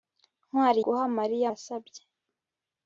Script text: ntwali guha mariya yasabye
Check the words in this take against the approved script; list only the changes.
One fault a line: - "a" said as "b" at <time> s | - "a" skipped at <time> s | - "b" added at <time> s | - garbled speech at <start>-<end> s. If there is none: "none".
none